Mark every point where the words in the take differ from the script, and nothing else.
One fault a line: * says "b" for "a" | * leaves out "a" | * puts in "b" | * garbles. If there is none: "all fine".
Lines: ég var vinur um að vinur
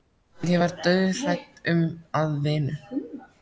* says "dauðhrædd" for "vinur"